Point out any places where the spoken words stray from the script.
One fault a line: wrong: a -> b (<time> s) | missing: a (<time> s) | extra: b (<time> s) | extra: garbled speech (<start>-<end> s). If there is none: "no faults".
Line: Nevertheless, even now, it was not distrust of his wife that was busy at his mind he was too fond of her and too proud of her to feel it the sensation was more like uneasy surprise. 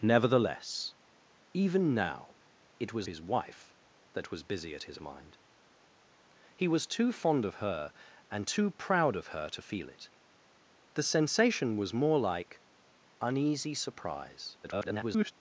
missing: not distrust of (3.1 s)
extra: garbled speech (14.6-15.3 s)